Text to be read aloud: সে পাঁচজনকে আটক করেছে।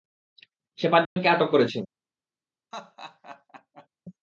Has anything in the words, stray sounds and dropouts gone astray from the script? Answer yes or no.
yes